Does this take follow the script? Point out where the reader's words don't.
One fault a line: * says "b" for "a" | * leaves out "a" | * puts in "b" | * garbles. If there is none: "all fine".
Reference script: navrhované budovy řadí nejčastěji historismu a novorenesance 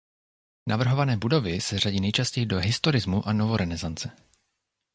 * puts in "se"
* puts in "do"